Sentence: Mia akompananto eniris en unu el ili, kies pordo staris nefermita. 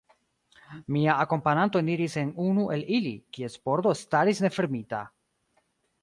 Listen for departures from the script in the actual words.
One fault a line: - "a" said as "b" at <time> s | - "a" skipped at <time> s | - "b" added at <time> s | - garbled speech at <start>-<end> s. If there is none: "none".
none